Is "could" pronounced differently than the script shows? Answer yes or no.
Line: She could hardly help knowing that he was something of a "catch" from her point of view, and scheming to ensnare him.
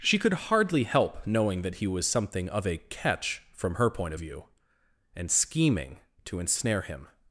no